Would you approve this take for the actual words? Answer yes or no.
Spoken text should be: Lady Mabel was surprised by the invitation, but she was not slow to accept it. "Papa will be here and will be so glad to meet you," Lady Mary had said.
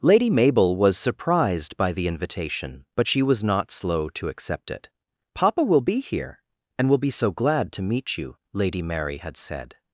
yes